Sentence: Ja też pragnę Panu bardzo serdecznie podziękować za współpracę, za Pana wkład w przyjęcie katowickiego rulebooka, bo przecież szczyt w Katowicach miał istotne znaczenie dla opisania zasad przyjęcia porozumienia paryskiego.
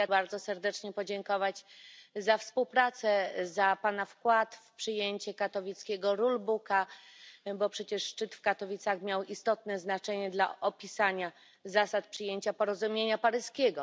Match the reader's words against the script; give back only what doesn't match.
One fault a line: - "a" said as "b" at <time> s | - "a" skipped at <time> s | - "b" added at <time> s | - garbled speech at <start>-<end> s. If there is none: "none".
- "też pragnę Panu" skipped at 0.1 s